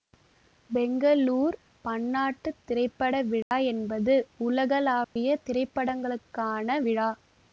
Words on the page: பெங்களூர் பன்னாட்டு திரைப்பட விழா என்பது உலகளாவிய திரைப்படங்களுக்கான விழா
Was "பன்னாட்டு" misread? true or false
false